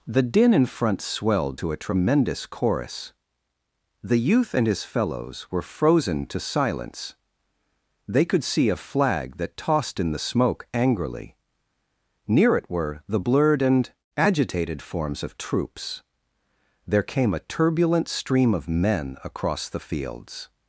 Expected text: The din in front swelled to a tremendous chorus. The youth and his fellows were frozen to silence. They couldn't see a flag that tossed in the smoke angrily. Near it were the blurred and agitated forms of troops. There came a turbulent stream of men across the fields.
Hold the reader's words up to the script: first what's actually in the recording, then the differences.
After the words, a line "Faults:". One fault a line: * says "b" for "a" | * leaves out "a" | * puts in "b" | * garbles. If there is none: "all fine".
The din in front swelled to a tremendous chorus. The youth and his fellows were frozen to silence. They could see a flag that tossed in the smoke angrily. Near it were the blurred and agitated forms of troops. There came a turbulent stream of men across the fields.
Faults:
* says "could" for "couldn't"